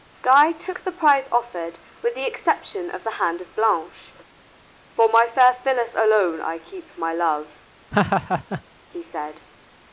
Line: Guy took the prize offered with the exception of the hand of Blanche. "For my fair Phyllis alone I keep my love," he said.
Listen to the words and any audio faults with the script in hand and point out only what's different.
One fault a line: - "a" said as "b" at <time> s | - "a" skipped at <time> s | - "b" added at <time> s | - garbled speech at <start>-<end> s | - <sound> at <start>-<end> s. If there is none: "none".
- laugh at 7.9-8.6 s